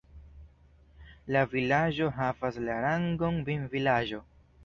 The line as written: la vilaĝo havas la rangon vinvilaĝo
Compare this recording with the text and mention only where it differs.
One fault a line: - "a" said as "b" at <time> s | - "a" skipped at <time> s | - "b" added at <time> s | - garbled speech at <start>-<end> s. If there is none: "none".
none